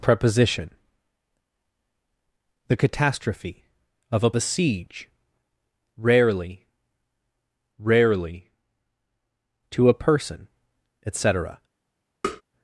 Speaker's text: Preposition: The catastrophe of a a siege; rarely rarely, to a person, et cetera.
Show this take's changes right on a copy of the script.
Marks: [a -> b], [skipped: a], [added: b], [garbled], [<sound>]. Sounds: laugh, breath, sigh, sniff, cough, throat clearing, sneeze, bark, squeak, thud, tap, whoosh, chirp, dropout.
Preposition: The catastrophe of a a siege; rarely rarely, to a person, et cetera. [tap]